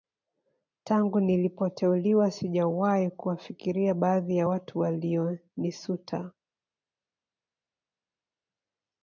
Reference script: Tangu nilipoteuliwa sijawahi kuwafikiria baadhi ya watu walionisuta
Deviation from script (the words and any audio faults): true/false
false